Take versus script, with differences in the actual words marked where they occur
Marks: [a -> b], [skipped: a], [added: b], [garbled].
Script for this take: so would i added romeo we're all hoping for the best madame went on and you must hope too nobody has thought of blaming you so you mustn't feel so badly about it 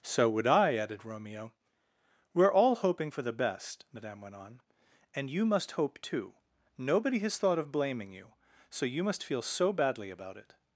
so would i added romeo we're all hoping for the best madame went on and you must hope too nobody has thought of blaming you so you [mustn't -> must] feel so badly about it